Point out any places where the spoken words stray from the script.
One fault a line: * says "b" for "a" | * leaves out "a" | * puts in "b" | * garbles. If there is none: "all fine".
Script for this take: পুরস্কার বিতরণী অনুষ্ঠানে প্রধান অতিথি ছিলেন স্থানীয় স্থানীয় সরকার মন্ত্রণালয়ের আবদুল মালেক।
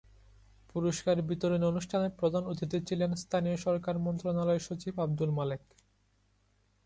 * leaves out "স্থানীয়"
* puts in "সচিব"